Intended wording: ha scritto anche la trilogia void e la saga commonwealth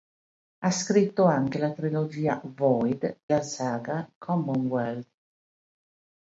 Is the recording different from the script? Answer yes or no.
yes